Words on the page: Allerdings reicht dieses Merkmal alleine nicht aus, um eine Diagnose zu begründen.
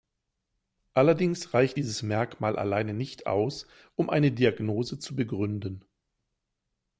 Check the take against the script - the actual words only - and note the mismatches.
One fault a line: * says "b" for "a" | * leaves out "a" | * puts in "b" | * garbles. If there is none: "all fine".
all fine